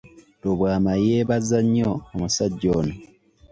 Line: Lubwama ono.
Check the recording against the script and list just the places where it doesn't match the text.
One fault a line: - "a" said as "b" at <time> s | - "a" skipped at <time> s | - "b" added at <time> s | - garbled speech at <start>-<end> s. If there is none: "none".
- "yeebaza nnyo omusajja" added at 1.1 s